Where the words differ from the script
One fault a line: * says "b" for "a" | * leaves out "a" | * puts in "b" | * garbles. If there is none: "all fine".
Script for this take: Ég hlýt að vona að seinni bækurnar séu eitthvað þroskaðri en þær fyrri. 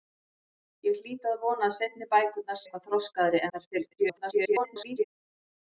* leaves out "séu"
* leaves out "en"
* garbles